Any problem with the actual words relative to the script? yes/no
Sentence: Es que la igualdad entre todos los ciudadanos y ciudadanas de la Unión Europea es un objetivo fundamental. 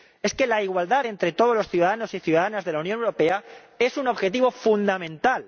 no